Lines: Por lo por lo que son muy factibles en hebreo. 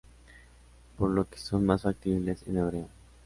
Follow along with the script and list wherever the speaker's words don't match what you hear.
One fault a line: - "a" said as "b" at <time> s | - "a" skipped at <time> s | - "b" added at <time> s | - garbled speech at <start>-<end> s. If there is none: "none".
- "por lo" skipped at 1.3 s
- "muy" said as "más" at 1.6 s